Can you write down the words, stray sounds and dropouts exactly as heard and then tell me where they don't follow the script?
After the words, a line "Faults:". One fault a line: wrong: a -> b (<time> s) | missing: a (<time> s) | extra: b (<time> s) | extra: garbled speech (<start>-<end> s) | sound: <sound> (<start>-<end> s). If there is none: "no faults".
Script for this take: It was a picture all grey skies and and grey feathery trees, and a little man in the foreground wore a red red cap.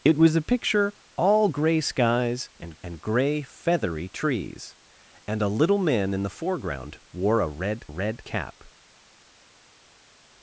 It was a picture all grey skies and and grey feathery trees, and a little man in the foreground wore a red red cap.
Faults:
no faults